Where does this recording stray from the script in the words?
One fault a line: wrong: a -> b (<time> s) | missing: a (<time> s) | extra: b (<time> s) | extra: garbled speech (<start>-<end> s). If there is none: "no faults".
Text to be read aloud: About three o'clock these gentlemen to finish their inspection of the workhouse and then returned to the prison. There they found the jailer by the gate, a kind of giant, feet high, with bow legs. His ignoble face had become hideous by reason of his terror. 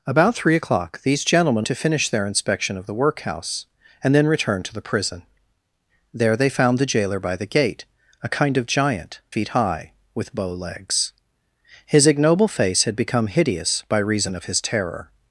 no faults